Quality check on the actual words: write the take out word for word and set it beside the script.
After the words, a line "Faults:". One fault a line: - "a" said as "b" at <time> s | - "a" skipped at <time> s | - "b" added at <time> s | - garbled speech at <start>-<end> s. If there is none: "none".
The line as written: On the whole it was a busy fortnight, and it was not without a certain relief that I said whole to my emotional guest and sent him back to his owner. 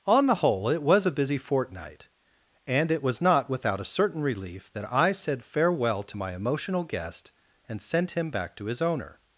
On the whole it was a busy fortnight, and it was not without a certain relief that I said farewell to my emotional guest and sent him back to his owner.
Faults:
- "whole" said as "farewell" at 5.4 s